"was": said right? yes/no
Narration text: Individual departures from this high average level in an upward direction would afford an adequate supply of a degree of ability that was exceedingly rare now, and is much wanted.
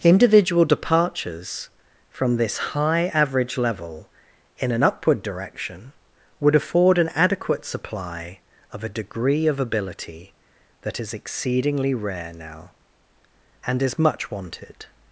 no